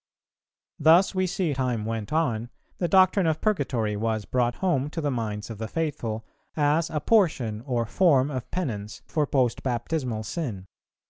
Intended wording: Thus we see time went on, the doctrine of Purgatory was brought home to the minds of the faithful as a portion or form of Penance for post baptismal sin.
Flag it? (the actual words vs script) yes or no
no